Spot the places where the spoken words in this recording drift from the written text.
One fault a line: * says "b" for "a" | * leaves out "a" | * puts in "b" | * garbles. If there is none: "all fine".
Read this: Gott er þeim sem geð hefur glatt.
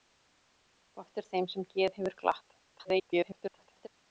* garbles